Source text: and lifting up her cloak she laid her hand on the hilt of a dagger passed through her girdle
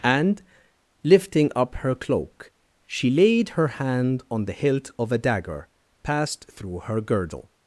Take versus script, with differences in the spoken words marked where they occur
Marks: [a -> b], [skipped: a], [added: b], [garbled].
and lifting up her cloak she laid her hand on the hilt of a dagger passed through her girdle